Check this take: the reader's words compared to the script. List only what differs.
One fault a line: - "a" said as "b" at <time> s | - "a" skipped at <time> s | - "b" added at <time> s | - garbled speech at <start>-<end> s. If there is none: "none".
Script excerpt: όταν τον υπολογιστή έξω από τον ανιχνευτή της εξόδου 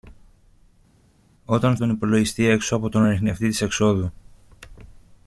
none